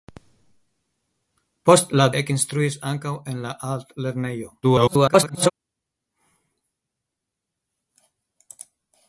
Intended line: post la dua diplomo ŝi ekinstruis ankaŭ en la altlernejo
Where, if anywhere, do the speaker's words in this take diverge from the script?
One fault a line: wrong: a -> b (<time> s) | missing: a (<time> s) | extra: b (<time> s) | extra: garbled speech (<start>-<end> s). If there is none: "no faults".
missing: dua diplomo ŝi (2.1 s)
extra: garbled speech (4.6-5.5 s)